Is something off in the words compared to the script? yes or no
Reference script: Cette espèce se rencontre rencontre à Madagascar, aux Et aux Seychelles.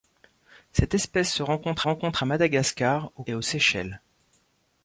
no